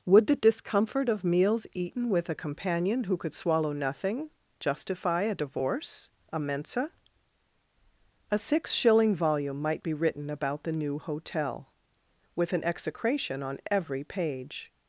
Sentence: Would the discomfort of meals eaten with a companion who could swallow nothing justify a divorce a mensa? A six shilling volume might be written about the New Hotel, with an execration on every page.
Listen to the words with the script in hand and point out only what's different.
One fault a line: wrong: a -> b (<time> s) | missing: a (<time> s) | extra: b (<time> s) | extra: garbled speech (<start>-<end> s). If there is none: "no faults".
no faults